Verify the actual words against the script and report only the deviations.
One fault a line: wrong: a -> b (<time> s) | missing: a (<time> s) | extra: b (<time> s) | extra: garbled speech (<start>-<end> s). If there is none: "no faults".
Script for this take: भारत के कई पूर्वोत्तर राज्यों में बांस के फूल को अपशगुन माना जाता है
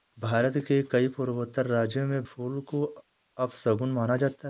missing: बांस के (2.2 s)